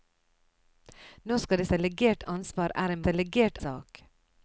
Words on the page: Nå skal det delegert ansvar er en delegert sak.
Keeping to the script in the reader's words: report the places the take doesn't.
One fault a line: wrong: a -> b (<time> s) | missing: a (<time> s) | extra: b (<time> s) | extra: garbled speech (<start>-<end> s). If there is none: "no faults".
no faults